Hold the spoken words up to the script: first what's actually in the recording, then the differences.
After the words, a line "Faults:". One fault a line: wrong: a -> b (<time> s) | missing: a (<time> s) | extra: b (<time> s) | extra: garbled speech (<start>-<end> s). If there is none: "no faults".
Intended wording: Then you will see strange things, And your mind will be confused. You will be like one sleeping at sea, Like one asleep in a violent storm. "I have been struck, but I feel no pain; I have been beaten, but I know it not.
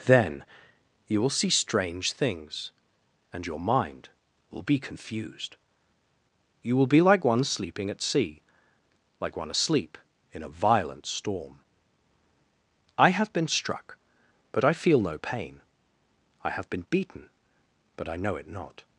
Then you will see strange things, And your mind will be confused. You will be like one sleeping at sea, Like one asleep in a violent storm. "I have been struck, but I feel no pain; I have been beaten, but I know it not.
Faults:
no faults